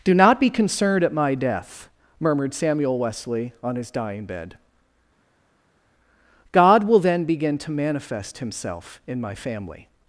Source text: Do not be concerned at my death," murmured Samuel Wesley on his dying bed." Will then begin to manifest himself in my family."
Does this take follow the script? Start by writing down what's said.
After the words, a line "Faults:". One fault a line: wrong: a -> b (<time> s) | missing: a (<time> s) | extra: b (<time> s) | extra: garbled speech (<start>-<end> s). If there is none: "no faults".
Do not be concerned at my death," murmured Samuel Wesley on his dying bed." God will then begin to manifest himself in my family."
Faults:
extra: God (6.5 s)